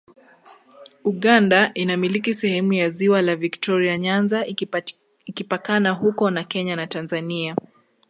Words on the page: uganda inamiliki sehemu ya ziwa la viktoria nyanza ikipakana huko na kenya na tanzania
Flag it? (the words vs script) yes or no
no